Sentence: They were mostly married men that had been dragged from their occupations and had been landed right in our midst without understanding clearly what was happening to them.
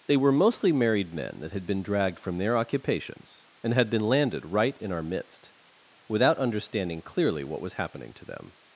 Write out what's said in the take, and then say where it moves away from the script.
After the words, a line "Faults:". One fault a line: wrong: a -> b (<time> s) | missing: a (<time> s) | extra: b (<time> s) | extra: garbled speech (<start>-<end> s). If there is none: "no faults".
They were mostly married men that had been dragged from their occupations and had been landed right in our midst without understanding clearly what was happening to them.
Faults:
no faults